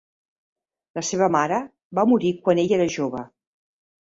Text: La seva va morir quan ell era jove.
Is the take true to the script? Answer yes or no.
no